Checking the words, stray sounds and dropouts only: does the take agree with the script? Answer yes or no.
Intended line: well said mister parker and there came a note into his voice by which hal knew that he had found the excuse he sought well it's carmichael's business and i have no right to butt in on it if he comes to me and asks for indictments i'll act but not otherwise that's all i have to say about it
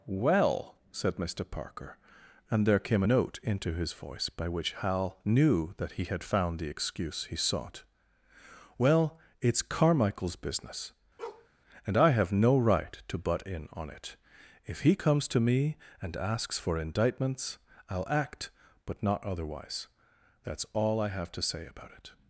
no